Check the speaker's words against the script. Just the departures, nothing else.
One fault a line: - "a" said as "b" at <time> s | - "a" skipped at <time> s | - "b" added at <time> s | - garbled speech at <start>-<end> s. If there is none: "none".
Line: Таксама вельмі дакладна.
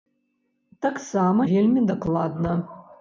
none